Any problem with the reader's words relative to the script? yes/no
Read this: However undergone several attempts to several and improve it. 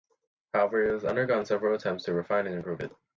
yes